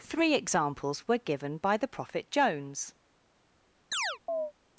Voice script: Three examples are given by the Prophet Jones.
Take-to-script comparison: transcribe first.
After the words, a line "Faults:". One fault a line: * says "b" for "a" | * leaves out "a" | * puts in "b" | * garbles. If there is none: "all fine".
Three examples were given by the Prophet Jones.
Faults:
* says "were" for "are"